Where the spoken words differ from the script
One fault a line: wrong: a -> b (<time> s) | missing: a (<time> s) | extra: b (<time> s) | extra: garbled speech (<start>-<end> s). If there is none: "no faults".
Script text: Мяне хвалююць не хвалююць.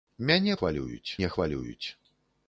no faults